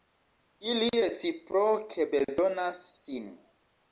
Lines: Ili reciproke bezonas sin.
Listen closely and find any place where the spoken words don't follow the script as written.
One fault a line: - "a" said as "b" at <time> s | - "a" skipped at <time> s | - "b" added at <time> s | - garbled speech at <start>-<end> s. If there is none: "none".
none